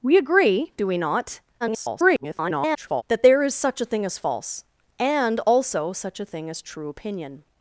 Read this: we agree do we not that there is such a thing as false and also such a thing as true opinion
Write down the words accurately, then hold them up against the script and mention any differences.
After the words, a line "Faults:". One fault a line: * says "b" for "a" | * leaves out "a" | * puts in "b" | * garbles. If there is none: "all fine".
we agree do we not [garbled] that there is such a thing as false and also such a thing as true opinion
Faults:
* garbles